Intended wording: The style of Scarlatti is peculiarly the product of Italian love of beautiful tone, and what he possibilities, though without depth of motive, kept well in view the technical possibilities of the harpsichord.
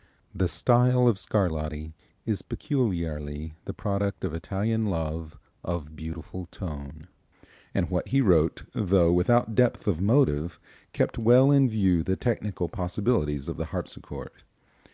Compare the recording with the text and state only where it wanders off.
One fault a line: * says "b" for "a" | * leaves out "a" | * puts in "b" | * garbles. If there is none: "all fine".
* says "wrote" for "possibilities"